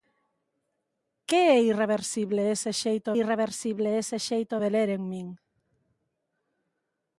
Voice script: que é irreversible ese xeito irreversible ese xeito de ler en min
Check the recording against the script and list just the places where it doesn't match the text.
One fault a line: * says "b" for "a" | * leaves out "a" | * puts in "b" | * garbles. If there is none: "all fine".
all fine